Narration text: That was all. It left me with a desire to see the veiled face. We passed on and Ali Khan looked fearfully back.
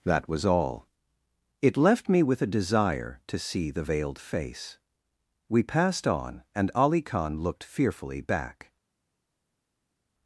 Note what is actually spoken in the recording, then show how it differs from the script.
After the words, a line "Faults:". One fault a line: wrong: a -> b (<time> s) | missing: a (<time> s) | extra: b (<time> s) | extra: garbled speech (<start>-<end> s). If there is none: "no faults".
That was all. It left me with a desire to see the veiled face. We passed on and Ali Khan looked fearfully back.
Faults:
no faults